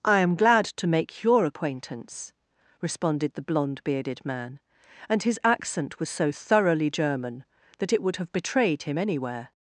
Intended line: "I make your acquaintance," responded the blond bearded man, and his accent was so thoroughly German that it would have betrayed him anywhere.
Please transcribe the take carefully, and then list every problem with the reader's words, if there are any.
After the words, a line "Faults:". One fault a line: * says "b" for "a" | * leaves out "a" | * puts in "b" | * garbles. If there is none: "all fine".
"I am glad to make your acquaintance," responded the blond bearded man, and his accent was so thoroughly German that it would have betrayed him anywhere.
Faults:
* puts in "am glad to"